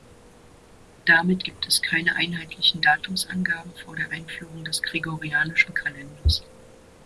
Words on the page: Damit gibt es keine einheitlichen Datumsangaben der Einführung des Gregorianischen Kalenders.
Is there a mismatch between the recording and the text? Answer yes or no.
yes